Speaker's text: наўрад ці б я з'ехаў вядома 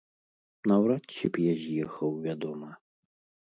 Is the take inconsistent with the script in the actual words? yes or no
no